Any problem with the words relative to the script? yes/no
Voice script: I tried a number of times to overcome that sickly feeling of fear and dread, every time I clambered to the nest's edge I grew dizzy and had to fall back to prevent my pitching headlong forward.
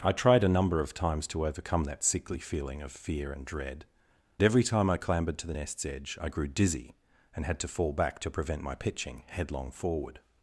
no